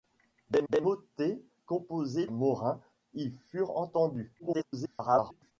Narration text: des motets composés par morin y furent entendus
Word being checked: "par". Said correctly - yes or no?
no